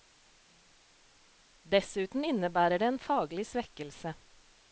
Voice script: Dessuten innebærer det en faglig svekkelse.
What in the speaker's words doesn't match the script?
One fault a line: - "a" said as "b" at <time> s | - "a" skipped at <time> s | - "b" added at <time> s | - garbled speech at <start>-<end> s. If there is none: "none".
none